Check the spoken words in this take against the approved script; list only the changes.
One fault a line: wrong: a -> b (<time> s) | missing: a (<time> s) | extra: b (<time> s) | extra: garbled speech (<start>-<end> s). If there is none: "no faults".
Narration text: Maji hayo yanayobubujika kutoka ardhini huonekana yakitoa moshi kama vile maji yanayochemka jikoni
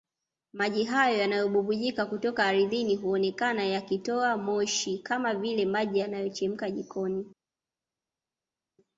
no faults